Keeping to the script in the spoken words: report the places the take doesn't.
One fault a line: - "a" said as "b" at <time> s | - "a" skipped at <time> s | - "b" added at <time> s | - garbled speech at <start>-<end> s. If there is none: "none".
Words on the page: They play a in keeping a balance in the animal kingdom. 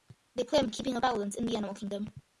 none